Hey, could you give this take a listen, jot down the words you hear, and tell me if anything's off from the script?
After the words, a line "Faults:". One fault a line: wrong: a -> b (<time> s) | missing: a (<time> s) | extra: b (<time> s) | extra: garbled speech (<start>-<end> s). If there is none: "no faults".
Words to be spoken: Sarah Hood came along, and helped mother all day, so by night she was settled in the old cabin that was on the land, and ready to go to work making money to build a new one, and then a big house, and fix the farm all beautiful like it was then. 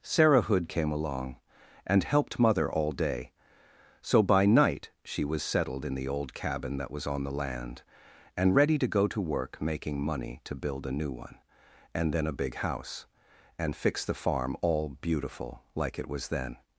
Sarah Hood came along, and helped mother all day, so by night she was settled in the old cabin that was on the land, and ready to go to work making money to build a new one, and then a big house, and fix the farm all beautiful like it was then.
Faults:
no faults